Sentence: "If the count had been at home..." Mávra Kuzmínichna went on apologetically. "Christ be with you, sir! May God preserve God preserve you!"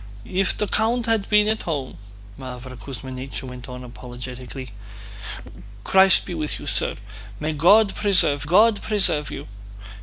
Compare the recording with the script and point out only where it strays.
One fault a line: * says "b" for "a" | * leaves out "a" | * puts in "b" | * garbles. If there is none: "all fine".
all fine